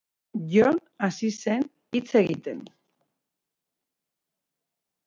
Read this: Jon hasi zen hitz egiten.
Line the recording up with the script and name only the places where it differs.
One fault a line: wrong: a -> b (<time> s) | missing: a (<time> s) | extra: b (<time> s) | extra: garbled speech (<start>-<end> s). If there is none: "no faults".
no faults